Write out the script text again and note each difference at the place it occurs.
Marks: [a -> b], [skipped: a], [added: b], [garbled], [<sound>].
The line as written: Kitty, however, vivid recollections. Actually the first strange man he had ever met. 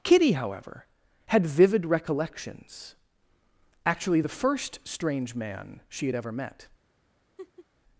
Kitty, however, [added: had] vivid recollections. Actually the first strange man [he -> she] had ever met. [laugh]